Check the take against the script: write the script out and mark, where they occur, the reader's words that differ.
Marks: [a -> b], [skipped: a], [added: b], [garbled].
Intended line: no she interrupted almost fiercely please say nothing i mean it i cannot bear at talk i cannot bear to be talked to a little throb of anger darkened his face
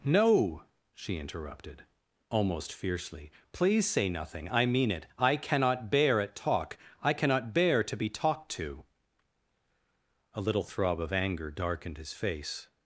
no she interrupted almost fiercely please say nothing i mean it i cannot bear at talk i cannot bear to be talked to a little throb of anger darkened his face